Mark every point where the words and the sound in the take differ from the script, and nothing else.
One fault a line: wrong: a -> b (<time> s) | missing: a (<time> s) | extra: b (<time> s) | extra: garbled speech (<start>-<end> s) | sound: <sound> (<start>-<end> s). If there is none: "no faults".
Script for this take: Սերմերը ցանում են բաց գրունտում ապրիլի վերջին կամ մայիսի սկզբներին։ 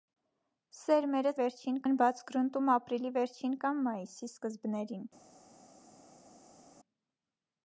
wrong: ցանում -> վերջին (1.4 s)